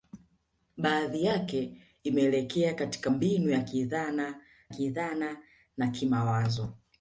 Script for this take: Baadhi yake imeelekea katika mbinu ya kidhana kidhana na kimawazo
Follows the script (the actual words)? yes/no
yes